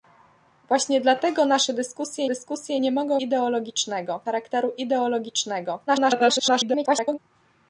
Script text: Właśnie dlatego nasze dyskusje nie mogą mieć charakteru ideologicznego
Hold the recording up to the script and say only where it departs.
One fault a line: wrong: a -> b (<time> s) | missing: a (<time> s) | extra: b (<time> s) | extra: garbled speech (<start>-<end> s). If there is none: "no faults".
extra: dyskusje (2.2 s)
wrong: mieć -> ideologicznego (3.2 s)
extra: garbled speech (5.9-7.2 s)